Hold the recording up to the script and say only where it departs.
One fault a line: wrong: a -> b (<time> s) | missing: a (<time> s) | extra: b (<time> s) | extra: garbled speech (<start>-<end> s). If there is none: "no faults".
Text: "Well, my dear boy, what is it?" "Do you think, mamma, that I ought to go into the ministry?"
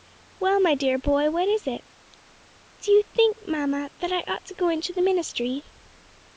no faults